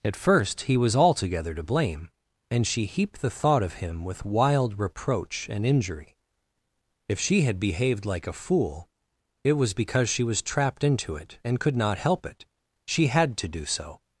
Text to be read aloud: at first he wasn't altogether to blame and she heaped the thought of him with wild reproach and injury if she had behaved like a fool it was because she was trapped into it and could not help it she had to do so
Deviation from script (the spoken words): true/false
true